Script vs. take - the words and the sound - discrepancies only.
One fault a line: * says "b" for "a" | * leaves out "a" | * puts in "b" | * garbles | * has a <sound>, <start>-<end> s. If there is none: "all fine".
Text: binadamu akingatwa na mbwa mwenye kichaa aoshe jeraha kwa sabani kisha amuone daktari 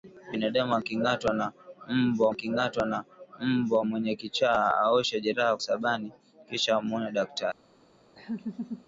* puts in "akingatwa na mbwa"
* leaves out "kwa"
* has a laugh, 8.2-8.9 s